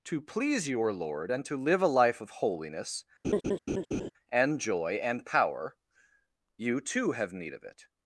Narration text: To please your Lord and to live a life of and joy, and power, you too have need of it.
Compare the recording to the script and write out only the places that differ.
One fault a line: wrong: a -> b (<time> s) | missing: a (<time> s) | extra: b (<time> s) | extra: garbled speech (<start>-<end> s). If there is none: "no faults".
extra: holiness (2.3 s)